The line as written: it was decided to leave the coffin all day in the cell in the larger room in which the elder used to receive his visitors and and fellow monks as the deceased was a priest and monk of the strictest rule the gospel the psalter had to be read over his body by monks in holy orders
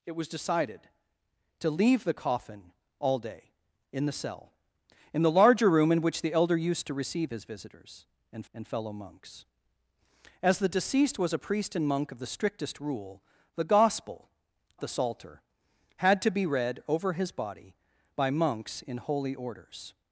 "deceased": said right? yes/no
yes